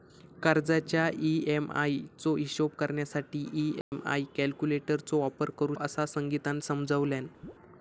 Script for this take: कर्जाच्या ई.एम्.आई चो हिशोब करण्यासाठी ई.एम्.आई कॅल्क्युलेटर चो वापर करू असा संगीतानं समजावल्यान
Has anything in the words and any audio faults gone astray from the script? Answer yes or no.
yes